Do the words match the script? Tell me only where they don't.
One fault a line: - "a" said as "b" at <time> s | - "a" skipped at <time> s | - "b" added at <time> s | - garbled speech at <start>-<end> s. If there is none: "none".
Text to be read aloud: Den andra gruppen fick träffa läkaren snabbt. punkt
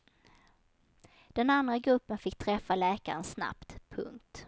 none